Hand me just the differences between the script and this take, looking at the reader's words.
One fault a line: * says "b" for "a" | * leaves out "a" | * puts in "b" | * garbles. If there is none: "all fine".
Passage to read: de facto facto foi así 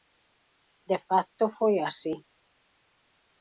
* leaves out "facto"